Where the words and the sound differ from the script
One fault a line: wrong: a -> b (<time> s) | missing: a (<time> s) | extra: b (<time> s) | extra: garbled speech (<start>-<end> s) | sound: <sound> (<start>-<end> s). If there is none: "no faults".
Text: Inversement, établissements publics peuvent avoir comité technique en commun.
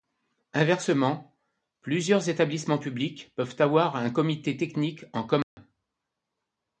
extra: plusieurs (1.8 s)
extra: un (4.0 s)
sound: dropout (5.4-5.6 s)